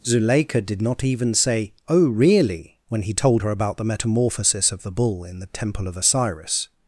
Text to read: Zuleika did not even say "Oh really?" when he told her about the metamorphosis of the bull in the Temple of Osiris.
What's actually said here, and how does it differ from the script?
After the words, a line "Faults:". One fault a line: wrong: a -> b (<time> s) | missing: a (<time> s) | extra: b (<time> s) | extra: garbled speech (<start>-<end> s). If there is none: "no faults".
Zuleika did not even say "Oh really?" when he told her about the metamorphosis of the bull in the Temple of Osiris.
Faults:
no faults